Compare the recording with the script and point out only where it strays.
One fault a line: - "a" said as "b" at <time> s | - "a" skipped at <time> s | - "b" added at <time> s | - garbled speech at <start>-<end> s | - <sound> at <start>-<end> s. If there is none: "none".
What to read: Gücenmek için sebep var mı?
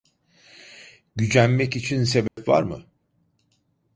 - dropout at 2.3-2.4 s